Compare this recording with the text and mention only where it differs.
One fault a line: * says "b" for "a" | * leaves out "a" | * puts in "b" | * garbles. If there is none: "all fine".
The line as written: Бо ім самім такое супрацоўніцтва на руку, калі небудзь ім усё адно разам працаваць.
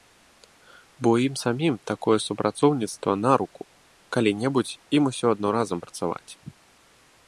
all fine